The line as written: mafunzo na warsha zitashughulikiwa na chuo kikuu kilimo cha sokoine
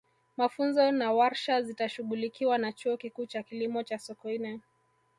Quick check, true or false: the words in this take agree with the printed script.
false